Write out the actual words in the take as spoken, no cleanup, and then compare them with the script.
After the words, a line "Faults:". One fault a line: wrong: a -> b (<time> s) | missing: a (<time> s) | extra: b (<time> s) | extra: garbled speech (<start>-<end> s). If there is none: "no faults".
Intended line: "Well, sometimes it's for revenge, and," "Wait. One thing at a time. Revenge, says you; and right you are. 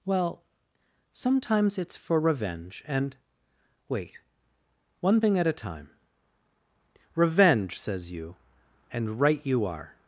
"Well, sometimes it's for revenge, and," "Wait. One thing at a time. Revenge, says you; and right you are.
Faults:
no faults